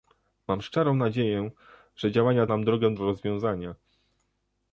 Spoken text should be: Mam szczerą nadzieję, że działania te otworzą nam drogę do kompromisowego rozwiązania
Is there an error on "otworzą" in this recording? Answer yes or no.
yes